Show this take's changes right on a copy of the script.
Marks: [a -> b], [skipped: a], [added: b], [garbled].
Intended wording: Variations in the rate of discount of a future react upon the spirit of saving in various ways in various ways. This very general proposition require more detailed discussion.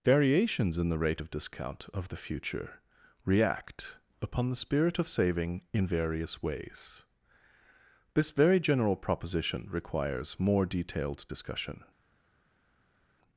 Variations in the rate of discount of [a -> the] future react upon the spirit of saving in various ways [skipped: in various ways.] This very general proposition [require -> requires] more detailed discussion.